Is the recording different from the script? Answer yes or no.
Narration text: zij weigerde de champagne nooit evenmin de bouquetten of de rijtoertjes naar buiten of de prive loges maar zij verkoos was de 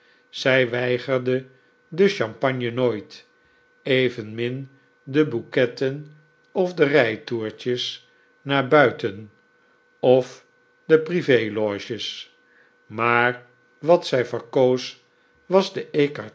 yes